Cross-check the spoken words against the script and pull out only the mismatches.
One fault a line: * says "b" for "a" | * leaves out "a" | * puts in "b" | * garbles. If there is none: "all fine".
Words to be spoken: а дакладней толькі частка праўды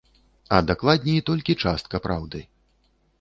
all fine